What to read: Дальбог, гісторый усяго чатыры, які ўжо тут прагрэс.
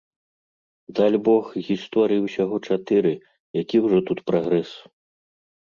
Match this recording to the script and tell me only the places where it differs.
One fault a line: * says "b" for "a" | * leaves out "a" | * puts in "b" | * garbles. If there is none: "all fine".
all fine